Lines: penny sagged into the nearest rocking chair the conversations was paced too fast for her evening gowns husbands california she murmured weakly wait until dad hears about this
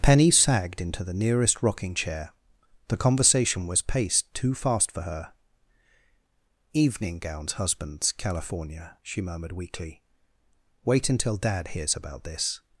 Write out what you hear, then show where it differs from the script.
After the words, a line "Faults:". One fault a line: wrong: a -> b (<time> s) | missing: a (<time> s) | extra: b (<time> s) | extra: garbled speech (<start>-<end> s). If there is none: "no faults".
penny sagged into the nearest rocking chair the conversation was paced too fast for her evening gowns husbands california she murmured weakly wait until dad hears about this
Faults:
wrong: conversations -> conversation (3.0 s)